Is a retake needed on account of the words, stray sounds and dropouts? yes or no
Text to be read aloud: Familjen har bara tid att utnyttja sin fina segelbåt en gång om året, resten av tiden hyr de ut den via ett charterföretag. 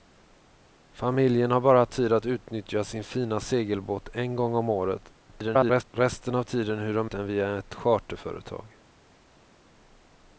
yes